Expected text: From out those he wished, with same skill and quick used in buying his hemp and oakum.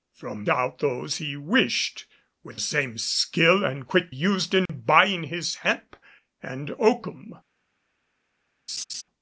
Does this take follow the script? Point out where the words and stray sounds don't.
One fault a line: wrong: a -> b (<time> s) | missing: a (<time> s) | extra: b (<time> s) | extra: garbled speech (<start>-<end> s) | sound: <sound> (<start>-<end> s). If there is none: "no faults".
sound: dropout (4.7-4.7 s)
sound: laugh (8.7-9.0 s)